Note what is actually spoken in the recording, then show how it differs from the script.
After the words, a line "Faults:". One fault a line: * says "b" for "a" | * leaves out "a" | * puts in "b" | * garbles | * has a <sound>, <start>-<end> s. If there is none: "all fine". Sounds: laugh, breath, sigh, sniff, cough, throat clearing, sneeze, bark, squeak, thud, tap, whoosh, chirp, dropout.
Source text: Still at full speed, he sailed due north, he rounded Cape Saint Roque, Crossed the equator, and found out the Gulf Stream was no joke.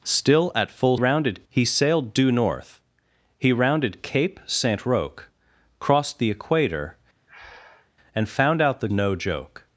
Still at full rounded, he sailed due north, he rounded Cape Saint Roque, Crossed the equator, and found out the No joke.
Faults:
* says "rounded" for "speed"
* has a breath, 7.3-7.9 s
* leaves out "Gulf Stream was"